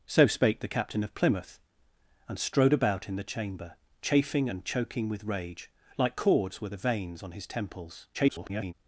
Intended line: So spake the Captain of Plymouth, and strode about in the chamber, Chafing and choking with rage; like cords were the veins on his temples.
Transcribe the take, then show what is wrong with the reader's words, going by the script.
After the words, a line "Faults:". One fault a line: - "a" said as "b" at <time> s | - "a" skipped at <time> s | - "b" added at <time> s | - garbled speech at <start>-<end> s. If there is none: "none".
So spake the Captain of Plymouth, and strode about in the chamber, Chafing and choking with rage; like cords were the veins on his temples. [garbled]
Faults:
- garbled speech at 8.1-8.7 s